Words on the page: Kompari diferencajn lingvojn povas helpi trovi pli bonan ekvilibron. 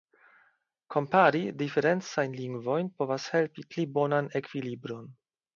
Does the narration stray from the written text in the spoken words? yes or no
yes